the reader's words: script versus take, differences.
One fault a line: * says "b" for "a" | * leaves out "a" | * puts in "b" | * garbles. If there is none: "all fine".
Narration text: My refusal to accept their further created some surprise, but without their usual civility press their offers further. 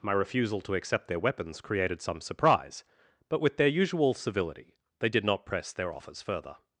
* says "weapons" for "further"
* says "with" for "without"
* puts in "they did not"